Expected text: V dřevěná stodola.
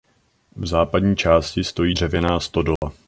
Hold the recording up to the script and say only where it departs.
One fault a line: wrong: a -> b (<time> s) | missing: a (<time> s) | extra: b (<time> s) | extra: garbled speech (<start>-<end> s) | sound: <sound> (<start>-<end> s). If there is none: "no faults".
extra: západní části stojí (0.7 s)
sound: dropout (2.8-2.8 s)